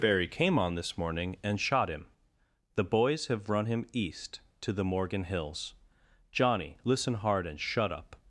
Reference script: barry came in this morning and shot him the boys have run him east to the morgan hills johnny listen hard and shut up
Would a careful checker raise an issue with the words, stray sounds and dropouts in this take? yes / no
yes